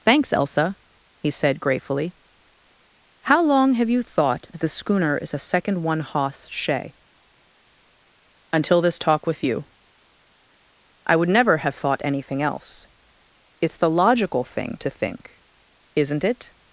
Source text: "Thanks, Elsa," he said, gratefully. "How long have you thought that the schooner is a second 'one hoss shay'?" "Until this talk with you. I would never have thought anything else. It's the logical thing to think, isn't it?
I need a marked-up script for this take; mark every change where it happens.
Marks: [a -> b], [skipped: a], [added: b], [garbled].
"Thanks, Elsa," he said, gratefully. "How long have you thought that the schooner is a second 'one hoss shay'?" "Until this talk with you. I would never have thought anything else. It's the logical thing to think, isn't it?